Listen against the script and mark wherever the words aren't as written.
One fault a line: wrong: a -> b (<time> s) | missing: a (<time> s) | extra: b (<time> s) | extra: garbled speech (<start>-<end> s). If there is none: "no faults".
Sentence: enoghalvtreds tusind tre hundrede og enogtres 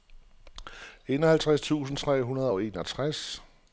no faults